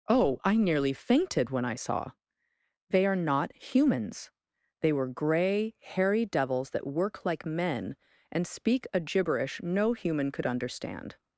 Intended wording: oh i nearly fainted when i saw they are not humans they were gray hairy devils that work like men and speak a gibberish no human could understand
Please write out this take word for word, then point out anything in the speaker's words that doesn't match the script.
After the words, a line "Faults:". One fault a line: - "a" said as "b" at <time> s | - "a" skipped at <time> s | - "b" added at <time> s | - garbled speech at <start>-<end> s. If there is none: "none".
oh i nearly fainted when i saw they are not humans they were gray hairy devils that work like men and speak a gibberish no human could understand
Faults:
none